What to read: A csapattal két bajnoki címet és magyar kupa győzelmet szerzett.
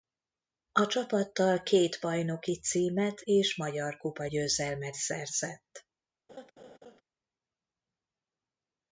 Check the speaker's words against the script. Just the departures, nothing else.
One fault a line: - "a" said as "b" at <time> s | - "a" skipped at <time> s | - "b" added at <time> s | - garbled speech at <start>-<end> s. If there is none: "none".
none